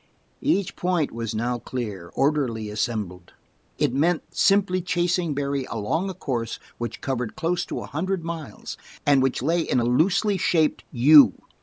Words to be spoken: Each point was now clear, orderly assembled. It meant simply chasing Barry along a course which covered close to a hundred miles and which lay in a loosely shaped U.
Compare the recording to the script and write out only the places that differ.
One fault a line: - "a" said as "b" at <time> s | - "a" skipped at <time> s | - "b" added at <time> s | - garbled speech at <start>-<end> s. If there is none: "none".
none